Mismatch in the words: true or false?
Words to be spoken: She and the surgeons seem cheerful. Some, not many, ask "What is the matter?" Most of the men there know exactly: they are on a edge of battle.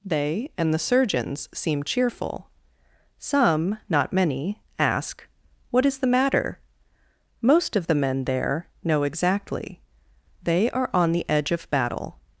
true